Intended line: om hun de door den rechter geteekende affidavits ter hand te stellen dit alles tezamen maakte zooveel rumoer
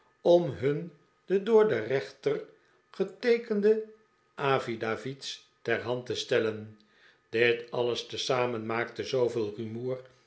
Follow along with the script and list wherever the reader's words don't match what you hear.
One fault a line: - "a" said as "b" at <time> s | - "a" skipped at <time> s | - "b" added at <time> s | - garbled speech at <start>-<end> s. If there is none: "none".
none